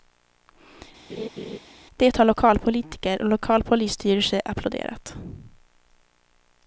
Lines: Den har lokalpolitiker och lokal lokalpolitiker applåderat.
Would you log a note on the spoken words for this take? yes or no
yes